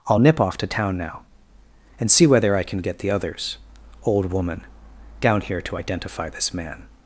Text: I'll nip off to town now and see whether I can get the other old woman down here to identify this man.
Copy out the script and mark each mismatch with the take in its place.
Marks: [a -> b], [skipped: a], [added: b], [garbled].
I'll nip off to town now and see whether I can get the [other -> others] old woman down here to identify this man.